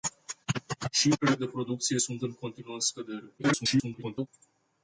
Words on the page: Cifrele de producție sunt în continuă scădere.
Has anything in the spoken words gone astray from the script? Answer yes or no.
yes